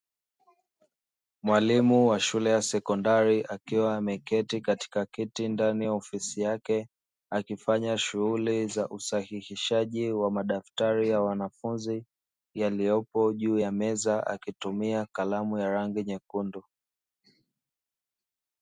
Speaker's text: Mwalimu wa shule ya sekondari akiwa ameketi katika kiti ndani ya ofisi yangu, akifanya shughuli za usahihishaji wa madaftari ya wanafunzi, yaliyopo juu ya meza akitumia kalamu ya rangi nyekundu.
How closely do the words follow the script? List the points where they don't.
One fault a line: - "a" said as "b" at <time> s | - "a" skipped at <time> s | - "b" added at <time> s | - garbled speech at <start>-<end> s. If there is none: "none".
- "yangu" said as "yake" at 6.4 s